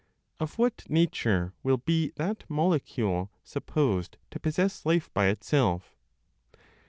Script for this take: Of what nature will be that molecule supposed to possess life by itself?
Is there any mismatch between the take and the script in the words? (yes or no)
no